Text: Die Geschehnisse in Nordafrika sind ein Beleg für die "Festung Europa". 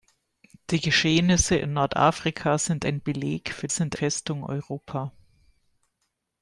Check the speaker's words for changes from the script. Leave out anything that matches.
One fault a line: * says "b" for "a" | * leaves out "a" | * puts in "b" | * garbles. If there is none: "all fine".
* says "sind" for "die"